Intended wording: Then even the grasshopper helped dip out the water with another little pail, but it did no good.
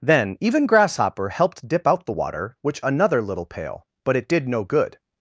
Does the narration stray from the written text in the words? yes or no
yes